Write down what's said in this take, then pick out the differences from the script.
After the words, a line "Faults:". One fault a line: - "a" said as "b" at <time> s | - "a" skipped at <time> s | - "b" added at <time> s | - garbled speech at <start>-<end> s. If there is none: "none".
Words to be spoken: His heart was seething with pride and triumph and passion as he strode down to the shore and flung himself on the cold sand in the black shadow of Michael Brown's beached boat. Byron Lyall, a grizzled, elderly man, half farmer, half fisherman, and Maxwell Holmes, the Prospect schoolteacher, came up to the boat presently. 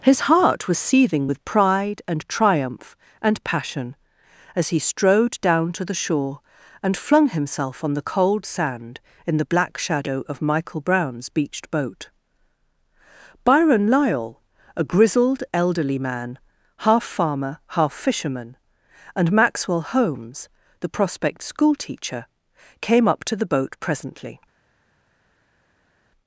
His heart was seething with pride and triumph and passion as he strode down to the shore and flung himself on the cold sand in the black shadow of Michael Brown's beached boat. Byron Lyall, a grizzled, elderly man, half farmer, half fisherman, and Maxwell Holmes, the Prospect schoolteacher, came up to the boat presently.
Faults:
none